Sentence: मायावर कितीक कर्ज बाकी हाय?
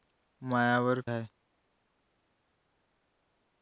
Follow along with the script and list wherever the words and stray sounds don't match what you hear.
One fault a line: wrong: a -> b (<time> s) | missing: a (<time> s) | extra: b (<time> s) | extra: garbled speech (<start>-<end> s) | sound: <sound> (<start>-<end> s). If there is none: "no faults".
missing: कितीक कर्ज बाकी (1.0 s)